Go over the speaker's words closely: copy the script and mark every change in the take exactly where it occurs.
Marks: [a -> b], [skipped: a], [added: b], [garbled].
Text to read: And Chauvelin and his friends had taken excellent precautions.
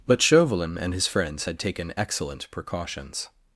[And -> But] Chauvelin and his friends had taken excellent precautions.